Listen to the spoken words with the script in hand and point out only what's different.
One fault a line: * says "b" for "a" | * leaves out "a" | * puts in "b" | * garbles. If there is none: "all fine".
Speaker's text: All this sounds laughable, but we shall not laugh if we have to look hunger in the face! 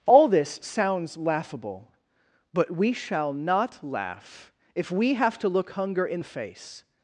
all fine